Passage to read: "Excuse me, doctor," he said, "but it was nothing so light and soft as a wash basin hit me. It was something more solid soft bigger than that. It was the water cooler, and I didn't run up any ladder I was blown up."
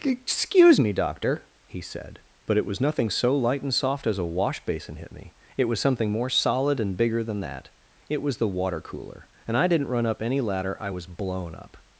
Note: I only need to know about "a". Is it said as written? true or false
true